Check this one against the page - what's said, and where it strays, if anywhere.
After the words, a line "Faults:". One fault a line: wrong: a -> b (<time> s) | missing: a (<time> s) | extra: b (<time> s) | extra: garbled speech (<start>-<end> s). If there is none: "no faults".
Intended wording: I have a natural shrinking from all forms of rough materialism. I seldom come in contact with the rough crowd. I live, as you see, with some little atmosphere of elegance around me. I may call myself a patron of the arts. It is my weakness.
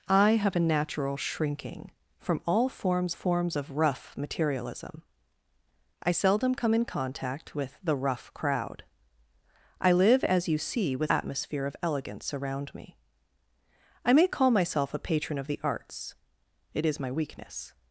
I have a natural shrinking from all forms forms of rough materialism. I seldom come in contact with the rough crowd. I live, as you see, with atmosphere of elegance around me. I may call myself a patron of the arts. It is my weakness.
Faults:
extra: forms (3.1 s)
missing: some little (11.1 s)